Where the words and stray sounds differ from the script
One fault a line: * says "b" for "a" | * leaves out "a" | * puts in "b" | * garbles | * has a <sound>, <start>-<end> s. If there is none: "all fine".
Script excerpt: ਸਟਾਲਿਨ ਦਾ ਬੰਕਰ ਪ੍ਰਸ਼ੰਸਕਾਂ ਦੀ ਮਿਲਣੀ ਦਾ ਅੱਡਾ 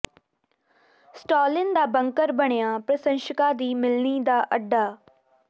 * puts in "ਬਣਿਆ"